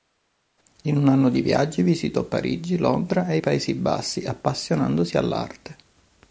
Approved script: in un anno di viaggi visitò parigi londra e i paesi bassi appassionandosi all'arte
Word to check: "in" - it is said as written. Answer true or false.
true